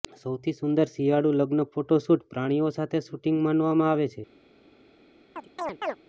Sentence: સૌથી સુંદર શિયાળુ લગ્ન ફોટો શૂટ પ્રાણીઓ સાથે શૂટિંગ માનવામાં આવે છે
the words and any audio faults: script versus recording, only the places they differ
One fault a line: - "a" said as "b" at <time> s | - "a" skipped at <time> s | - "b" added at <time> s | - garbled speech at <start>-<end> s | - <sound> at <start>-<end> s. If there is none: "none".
- chirp at 5.4-6.0 s